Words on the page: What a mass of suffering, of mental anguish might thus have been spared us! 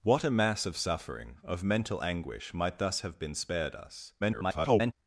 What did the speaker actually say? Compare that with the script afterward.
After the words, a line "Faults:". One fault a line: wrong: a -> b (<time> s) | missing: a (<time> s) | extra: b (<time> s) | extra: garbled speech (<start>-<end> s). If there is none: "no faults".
What a mass of suffering, of mental anguish might thus have been spared us! [garbled]
Faults:
extra: garbled speech (4.2-4.9 s)